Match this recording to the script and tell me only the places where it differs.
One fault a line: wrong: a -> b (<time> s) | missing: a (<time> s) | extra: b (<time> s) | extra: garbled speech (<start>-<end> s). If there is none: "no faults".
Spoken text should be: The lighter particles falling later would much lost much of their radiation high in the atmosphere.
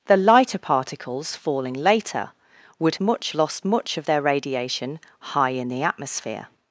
no faults